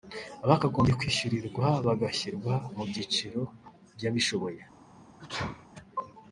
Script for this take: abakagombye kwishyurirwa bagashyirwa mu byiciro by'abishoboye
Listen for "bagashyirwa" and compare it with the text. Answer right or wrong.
right